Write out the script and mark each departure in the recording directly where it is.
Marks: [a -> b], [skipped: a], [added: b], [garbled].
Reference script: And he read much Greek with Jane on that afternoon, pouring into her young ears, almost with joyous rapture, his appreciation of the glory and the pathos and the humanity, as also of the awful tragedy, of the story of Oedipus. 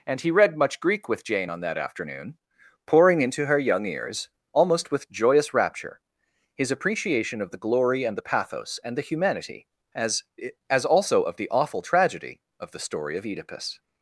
And he read much Greek with Jane on that afternoon, pouring into her young ears, almost with joyous rapture, his appreciation of the glory and the pathos and the humanity, as [added: as] also of the awful tragedy, of the story of Oedipus.